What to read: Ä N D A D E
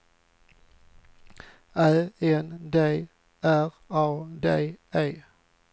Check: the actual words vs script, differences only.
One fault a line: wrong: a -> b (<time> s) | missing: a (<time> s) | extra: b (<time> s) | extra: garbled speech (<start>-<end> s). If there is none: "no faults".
extra: R (3.4 s)